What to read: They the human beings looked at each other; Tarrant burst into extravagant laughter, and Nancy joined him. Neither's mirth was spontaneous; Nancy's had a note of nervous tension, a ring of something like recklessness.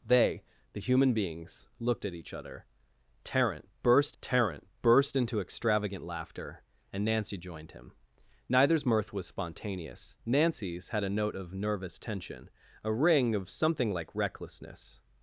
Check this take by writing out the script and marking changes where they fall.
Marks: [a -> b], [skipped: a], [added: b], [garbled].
They the human beings looked at each other; Tarrant burst [added: Tarrant burst] into extravagant laughter, and Nancy joined him. Neither's mirth was spontaneous; Nancy's had a note of nervous tension, a ring of something like recklessness.